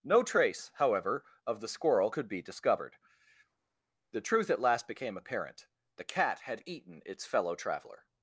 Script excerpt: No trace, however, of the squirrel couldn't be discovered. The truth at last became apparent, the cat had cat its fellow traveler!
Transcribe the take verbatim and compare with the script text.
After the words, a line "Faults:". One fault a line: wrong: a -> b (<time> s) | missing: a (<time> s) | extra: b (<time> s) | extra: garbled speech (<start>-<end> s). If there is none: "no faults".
No trace, however, of the squirrel could be discovered. The truth at last became apparent, the cat had eaten its fellow traveler!
Faults:
wrong: couldn't -> could (2.1 s)
wrong: cat -> eaten (6.7 s)